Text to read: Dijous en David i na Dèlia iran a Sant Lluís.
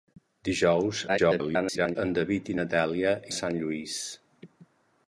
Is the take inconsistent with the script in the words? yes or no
yes